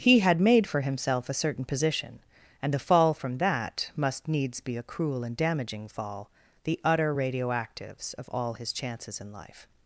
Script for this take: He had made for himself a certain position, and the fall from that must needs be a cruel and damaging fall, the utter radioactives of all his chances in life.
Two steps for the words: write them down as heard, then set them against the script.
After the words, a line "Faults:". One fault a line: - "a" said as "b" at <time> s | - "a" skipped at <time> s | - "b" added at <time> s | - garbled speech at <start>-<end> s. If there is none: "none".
He had made for himself a certain position, and the fall from that must needs be a cruel and damaging fall, the utter radioactives of all his chances in life.
Faults:
none